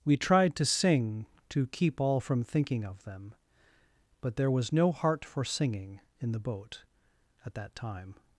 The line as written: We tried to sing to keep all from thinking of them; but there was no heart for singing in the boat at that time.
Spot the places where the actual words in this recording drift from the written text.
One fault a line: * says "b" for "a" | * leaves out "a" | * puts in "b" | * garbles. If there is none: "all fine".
all fine